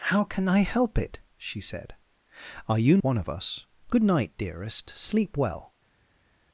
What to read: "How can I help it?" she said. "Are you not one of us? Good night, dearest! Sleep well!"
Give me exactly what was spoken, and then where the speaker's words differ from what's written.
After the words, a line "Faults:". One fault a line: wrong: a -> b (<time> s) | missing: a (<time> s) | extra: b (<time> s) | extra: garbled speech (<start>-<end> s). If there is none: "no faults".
"How can I help it?" she said. "Are you one of us? Good night, dearest! Sleep well!"
Faults:
missing: not (3.0 s)